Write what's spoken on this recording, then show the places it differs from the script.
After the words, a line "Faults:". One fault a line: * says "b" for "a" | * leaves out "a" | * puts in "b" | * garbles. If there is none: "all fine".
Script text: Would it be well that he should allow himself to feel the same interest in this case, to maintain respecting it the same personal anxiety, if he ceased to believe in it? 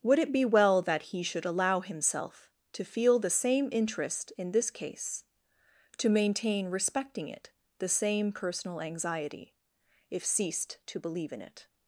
Would it be well that he should allow himself to feel the same interest in this case, to maintain respecting it the same personal anxiety, if ceased to believe in it?
Faults:
* leaves out "he"